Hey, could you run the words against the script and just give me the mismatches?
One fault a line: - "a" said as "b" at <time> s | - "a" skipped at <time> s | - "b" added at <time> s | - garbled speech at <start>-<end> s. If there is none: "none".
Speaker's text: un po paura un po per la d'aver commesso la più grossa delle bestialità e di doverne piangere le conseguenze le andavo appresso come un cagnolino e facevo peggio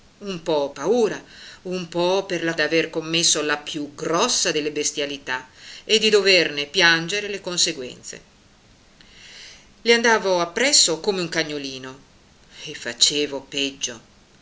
none